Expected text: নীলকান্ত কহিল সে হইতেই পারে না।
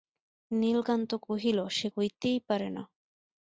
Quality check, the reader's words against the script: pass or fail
pass